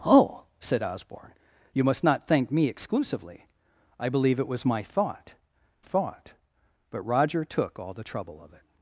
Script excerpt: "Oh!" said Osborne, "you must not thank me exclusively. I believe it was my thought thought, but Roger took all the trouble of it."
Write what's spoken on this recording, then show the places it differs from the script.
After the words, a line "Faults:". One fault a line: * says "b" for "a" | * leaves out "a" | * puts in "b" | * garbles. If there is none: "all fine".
"Oh!" said Osborne, "you must not thank me exclusively. I believe it was my thought thought, but Roger took all the trouble of it."
Faults:
all fine